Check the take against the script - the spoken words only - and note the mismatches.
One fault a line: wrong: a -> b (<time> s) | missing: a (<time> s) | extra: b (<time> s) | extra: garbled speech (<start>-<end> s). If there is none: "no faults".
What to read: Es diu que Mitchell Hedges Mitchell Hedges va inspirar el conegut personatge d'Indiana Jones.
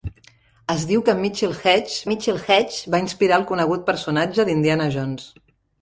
no faults